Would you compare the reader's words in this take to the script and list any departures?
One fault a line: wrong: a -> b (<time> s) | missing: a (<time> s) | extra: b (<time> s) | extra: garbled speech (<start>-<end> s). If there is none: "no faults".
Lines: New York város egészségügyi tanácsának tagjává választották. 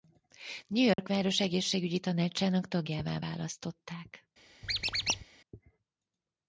no faults